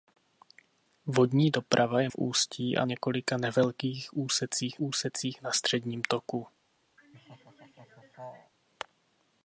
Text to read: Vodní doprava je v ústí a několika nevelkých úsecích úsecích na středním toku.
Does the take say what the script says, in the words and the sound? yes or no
no